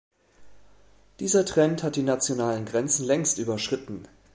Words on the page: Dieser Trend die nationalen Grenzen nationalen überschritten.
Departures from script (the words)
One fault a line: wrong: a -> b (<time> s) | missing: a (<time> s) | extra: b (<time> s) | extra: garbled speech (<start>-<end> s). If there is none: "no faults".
extra: hat (1.8 s)
wrong: nationalen -> längst (3.0 s)